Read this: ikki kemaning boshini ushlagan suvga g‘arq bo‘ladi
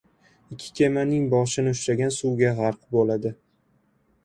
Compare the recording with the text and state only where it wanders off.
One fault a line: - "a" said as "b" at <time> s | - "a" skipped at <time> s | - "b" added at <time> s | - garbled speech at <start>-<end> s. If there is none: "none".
none